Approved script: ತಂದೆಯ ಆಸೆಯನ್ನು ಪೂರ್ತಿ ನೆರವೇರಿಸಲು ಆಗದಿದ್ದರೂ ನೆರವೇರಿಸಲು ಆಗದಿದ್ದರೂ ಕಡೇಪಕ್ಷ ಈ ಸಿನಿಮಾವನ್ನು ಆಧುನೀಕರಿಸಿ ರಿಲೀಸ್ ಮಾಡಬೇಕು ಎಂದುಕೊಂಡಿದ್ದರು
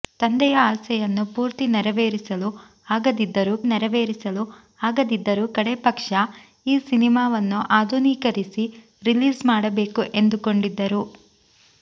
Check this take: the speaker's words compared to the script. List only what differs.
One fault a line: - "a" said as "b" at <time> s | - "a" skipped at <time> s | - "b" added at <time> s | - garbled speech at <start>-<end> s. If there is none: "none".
none